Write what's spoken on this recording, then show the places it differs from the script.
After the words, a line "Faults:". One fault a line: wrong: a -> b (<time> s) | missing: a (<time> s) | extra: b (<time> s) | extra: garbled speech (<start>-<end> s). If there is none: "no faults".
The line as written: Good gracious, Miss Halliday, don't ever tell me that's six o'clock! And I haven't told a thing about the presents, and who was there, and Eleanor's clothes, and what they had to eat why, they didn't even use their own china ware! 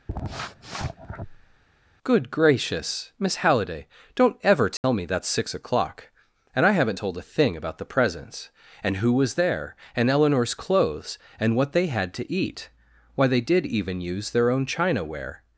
Good gracious, Miss Halliday, don't ever tell me that's six o'clock! And I haven't told a thing about the presents, and who was there, and Eleanor's clothes, and what they had to eat why, they did even use their own china ware!
Faults:
wrong: didn't -> did (13.4 s)